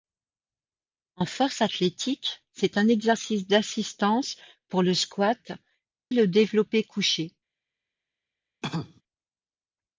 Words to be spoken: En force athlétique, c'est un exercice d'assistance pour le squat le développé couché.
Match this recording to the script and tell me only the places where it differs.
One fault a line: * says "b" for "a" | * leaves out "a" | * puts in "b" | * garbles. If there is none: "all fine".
all fine